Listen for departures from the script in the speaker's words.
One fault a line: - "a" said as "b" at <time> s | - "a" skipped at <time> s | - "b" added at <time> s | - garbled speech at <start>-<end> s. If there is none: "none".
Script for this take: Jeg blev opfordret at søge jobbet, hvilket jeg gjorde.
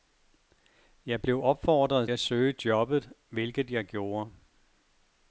none